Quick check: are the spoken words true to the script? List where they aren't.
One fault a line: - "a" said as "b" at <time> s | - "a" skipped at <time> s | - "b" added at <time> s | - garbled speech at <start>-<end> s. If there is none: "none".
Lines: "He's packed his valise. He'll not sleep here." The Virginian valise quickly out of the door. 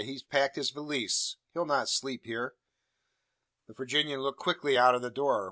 - "valise" said as "looked" at 4.2 s